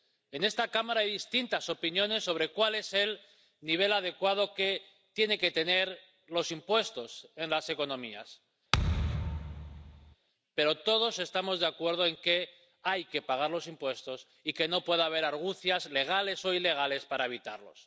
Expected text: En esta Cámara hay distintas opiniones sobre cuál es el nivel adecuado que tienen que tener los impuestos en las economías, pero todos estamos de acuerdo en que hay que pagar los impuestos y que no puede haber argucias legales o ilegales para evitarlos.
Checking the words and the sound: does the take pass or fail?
fail